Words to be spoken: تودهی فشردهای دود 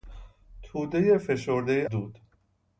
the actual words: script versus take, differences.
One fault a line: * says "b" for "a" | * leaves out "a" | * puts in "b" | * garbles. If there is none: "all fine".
all fine